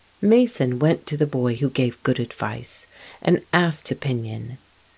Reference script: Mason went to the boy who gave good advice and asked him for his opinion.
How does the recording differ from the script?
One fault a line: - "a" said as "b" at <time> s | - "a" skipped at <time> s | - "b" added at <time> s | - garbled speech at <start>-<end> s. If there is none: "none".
- "him for his" skipped at 3.9 s